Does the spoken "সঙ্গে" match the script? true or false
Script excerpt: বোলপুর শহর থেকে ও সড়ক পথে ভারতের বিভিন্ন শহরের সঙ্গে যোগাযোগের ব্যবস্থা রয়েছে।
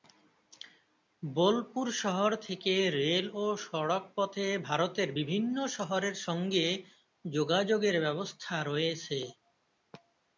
true